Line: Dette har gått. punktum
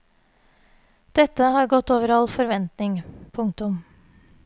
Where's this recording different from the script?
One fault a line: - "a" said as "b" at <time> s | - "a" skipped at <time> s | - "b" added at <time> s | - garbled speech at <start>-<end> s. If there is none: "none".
- "over all forventning" added at 1.9 s